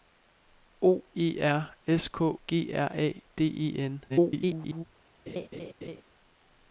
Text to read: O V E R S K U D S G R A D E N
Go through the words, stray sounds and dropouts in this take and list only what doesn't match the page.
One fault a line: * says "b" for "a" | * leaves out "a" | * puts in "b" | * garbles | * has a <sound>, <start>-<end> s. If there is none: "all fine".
* leaves out "V"
* leaves out "U D S"
* garbles
* has a laugh, 5.3-6.0 s